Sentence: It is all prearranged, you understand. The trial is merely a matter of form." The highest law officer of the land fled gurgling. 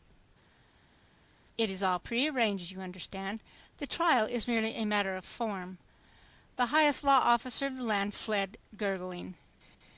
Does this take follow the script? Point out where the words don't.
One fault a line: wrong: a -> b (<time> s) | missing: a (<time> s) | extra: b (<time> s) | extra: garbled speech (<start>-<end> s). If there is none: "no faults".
no faults